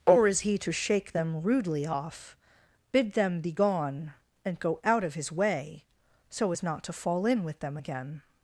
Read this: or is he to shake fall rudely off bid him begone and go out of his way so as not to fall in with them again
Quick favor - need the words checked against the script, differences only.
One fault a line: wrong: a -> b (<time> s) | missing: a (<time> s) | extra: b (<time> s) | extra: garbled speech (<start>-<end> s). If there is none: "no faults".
wrong: fall -> them (1.1 s)
wrong: him -> them (3.1 s)